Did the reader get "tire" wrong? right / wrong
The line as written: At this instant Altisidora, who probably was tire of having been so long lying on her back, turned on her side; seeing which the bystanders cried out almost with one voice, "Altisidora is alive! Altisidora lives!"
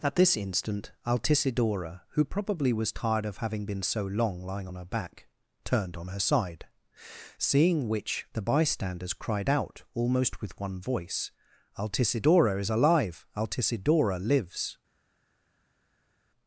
wrong